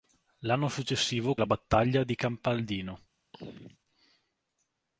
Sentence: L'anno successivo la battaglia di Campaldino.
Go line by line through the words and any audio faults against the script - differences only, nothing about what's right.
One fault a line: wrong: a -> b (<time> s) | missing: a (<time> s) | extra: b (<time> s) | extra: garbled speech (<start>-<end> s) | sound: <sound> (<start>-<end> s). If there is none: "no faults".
sound: throat clearing (3.3-3.8 s)